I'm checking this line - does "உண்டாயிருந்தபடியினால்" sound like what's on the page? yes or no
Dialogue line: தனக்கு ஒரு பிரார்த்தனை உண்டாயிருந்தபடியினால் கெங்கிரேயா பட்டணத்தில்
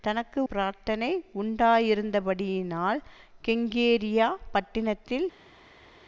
yes